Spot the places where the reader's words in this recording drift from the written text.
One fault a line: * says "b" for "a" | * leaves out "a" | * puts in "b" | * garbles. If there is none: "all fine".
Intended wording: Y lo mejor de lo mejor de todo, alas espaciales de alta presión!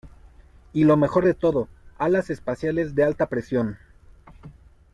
* leaves out "lo mejor de"